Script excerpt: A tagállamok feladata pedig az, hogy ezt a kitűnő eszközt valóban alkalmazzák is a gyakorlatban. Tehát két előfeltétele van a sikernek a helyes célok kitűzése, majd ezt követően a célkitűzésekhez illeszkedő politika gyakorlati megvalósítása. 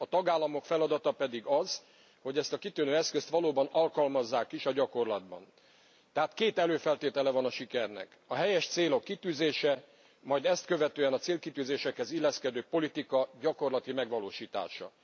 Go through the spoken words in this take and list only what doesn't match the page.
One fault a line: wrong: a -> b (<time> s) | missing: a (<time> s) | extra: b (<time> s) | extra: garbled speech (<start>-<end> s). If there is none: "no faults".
no faults